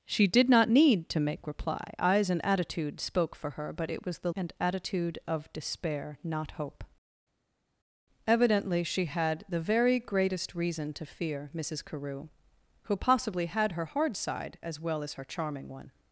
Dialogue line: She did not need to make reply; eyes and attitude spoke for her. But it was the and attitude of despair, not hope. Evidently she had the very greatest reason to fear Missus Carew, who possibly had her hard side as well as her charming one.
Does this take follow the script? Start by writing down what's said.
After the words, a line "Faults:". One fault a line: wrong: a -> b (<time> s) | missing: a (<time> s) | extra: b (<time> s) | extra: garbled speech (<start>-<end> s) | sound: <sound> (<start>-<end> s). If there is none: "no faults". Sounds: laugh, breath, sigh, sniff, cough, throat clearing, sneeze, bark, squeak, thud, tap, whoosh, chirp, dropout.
She did not need to make reply; eyes and attitude spoke for her. But it was the and attitude of despair, not hope. Evidently she had the very greatest reason to fear Missus Carew, who possibly had her hard side as well as her charming one.
Faults:
no faults